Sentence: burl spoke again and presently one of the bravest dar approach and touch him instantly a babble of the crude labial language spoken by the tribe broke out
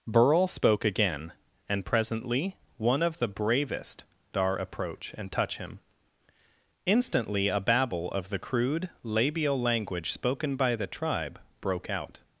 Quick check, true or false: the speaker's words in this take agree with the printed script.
true